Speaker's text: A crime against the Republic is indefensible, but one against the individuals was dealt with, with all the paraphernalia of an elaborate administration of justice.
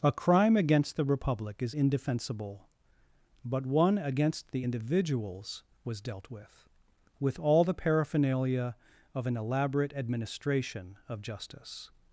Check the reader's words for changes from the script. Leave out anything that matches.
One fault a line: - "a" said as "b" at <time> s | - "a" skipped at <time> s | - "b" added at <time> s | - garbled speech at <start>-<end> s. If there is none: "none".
none